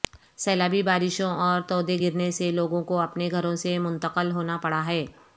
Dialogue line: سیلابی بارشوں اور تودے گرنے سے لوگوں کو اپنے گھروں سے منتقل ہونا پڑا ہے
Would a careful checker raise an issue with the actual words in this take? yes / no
no